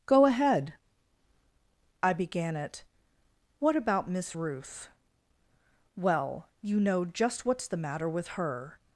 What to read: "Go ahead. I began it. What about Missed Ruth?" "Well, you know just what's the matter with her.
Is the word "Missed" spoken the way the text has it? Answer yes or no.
no